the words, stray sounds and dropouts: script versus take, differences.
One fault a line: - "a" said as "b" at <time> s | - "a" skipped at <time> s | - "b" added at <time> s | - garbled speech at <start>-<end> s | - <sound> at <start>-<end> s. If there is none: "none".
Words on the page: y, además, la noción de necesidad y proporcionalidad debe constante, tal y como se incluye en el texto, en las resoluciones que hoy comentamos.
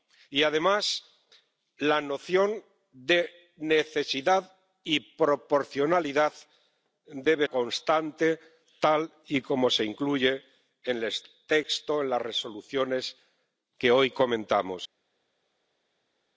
none